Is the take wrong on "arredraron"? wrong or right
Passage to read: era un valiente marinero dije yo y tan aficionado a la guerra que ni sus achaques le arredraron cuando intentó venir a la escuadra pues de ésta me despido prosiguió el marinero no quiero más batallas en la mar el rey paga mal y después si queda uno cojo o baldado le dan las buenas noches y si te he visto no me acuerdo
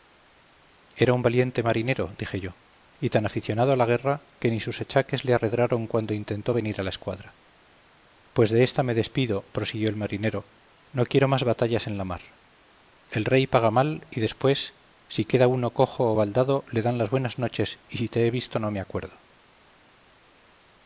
right